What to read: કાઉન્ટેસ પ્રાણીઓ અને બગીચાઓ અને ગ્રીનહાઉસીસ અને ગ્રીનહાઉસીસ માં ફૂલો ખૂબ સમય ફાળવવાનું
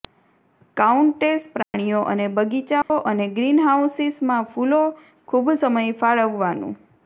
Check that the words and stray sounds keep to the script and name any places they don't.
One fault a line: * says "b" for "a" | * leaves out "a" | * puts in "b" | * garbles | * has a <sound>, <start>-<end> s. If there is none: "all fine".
* has a dropout, 1.6-1.7 s
* has a dropout, 2.8-2.9 s
* leaves out "અને ગ્રીનહાઉસીસ"